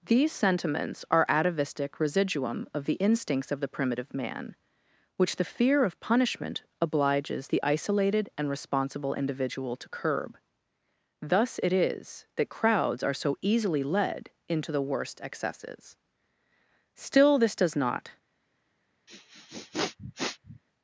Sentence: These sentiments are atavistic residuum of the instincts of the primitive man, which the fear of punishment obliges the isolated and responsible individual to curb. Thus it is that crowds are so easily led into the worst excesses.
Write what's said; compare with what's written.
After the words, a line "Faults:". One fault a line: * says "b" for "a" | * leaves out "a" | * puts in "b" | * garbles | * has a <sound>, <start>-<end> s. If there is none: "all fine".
These sentiments are atavistic residuum of the instincts of the primitive man, which the fear of punishment obliges the isolated and responsible individual to curb. Thus it is that crowds are so easily led into the worst excesses. Still this does not
Faults:
* puts in "Still this does not"
* has a sniff, 19.1-20.6 s